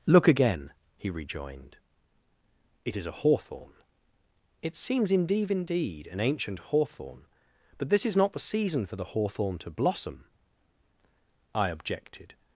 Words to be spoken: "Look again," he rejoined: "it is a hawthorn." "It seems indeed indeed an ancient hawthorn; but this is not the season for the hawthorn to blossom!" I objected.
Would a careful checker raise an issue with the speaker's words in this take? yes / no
no